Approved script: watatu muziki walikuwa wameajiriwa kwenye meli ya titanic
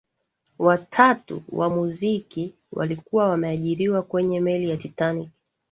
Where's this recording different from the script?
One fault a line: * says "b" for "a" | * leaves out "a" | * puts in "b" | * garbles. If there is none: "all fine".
* puts in "wa"